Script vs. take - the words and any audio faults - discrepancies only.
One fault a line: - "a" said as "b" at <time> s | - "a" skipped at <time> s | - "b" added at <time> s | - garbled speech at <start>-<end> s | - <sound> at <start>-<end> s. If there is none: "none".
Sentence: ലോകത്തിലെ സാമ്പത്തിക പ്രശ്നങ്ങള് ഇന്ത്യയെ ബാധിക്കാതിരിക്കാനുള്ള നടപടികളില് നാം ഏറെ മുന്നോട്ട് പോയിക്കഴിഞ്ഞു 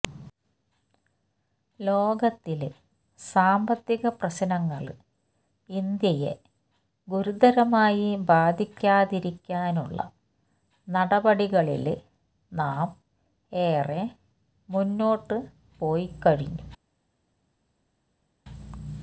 - "ഗുരുതരമായി" added at 7.1 s